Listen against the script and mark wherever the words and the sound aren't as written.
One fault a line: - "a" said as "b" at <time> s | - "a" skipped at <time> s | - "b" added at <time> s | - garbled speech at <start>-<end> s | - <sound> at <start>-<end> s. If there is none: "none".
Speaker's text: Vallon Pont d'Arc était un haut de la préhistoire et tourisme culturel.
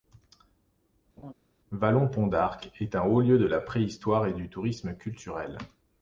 - laugh at 1.2-1.3 s
- "était" said as "est" at 2.8 s
- "lieu" added at 3.2 s
- "du" added at 4.3 s